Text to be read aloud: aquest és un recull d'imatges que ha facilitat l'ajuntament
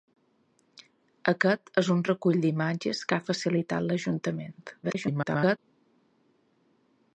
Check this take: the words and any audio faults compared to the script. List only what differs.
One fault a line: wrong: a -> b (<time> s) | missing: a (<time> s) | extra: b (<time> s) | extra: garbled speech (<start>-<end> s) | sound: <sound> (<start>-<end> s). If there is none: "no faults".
extra: garbled speech (4.8-5.6 s)